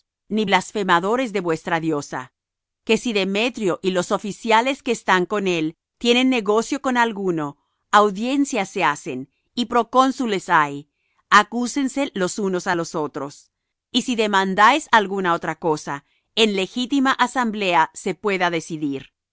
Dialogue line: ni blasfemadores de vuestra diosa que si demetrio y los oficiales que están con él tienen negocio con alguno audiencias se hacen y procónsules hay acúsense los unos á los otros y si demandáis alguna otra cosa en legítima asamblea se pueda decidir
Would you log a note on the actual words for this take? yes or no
no